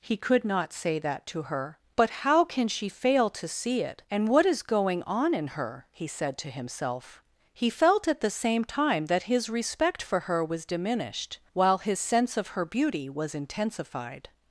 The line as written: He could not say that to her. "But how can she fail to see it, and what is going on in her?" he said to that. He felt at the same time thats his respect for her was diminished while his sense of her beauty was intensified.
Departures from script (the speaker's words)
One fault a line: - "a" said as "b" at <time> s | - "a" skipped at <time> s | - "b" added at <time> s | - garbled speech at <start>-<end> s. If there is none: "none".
- "that" said as "himself" at 6.5 s
- "thats" said as "that" at 9.1 s